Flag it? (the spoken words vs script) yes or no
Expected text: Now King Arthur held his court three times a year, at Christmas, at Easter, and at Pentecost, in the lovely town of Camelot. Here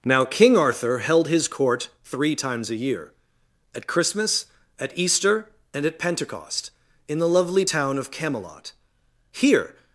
no